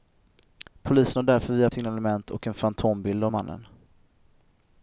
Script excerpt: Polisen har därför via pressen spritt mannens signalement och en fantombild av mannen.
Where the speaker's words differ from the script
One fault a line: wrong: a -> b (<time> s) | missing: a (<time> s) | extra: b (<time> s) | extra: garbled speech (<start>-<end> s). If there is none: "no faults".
missing: pressen spritt mannens (1.7 s)